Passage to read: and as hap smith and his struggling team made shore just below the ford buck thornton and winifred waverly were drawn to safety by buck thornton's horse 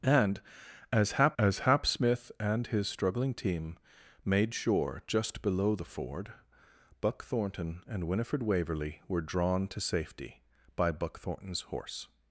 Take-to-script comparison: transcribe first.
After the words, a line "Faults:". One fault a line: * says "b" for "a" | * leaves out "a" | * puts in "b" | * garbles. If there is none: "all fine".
and as hap as hap smith and his struggling team made shore just below the ford buck thornton and winifred waverly were drawn to safety by buck thornton's horse
Faults:
* puts in "as hap"